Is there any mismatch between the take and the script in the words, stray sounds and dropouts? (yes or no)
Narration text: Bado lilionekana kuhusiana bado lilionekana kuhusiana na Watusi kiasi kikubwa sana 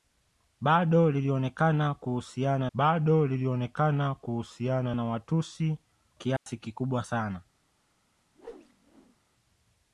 yes